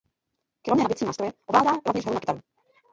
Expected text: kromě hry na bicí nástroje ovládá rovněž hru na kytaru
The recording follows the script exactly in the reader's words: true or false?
false